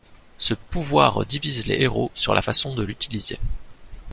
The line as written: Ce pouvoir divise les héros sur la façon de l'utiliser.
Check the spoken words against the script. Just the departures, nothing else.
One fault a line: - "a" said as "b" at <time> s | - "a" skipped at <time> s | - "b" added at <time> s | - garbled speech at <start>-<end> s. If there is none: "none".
none